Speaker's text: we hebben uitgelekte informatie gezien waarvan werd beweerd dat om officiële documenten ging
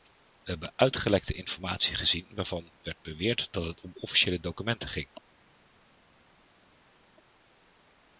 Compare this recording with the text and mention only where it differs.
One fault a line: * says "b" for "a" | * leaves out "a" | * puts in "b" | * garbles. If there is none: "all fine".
* puts in "het"